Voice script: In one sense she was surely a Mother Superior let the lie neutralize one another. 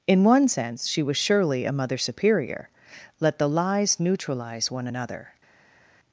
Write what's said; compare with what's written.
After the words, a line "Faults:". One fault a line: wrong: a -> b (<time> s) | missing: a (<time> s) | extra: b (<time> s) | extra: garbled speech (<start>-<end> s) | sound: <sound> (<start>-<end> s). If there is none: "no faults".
In one sense she was surely a Mother Superior let the lies neutralize one another.
Faults:
wrong: lie -> lies (3.5 s)